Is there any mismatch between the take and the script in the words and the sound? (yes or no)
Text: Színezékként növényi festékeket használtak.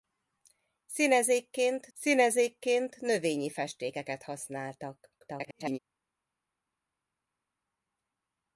yes